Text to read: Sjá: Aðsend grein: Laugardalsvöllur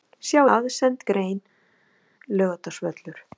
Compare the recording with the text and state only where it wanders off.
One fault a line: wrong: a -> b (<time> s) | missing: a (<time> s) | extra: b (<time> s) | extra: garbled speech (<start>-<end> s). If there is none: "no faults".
no faults